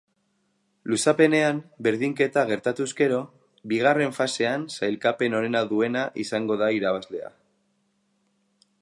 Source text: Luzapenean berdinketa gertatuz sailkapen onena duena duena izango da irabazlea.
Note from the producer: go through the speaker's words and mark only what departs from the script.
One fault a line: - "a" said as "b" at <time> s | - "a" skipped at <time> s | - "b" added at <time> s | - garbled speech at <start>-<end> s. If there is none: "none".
- "gero bigarren fasean" added at 3.0 s
- "duena" skipped at 6.1 s